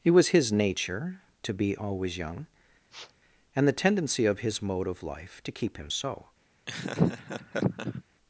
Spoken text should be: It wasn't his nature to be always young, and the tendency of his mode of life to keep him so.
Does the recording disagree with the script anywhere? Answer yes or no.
yes